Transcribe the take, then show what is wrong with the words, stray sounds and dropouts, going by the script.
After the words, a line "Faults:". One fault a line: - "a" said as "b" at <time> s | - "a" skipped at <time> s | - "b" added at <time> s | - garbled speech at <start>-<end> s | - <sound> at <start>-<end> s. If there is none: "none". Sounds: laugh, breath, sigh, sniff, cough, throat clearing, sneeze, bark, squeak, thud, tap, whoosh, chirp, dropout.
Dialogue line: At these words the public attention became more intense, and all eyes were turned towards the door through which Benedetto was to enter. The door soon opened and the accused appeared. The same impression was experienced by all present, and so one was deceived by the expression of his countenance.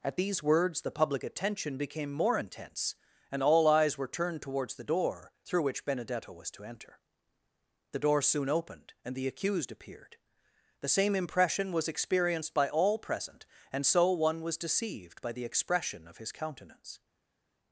At these words the public attention became more intense, and all eyes were turned towards the door through which Benedetto was to enter. The door soon opened and the accused appeared. The same impression was experienced by all present, and so one was deceived by the expression of his countenance.
Faults:
none